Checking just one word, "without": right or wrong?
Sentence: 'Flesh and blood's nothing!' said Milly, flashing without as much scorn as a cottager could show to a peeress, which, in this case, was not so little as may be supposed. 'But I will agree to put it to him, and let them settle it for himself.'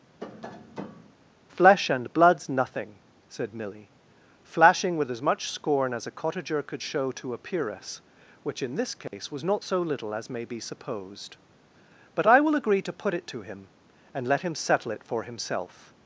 wrong